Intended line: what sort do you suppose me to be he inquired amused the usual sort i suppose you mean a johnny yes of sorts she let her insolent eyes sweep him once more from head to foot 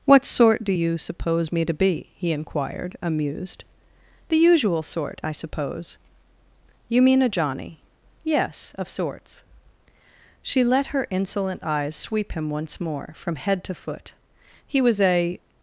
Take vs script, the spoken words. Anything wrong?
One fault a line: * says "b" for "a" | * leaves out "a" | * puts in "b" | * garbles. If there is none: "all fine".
* puts in "he was a"